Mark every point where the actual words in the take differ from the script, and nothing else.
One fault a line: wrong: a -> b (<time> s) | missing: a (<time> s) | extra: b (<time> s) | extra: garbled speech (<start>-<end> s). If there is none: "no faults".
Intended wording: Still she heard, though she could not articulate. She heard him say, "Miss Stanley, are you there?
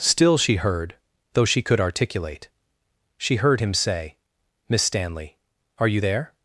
missing: not (1.8 s)